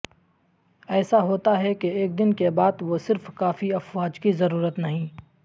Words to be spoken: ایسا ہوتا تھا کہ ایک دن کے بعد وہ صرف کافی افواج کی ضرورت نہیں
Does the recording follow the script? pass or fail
fail